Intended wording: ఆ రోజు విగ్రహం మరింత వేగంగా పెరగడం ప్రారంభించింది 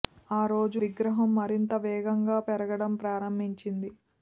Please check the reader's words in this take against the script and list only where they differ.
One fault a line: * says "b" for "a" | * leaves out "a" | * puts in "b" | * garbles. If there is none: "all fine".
all fine